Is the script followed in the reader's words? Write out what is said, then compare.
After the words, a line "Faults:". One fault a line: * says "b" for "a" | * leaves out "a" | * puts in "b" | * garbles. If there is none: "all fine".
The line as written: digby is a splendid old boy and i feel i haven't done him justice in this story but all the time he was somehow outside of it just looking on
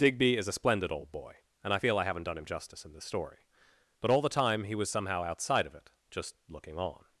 digby is a splendid old boy and i feel i haven't done him justice in this story but all the time he was somehow outside of it just looking on
Faults:
all fine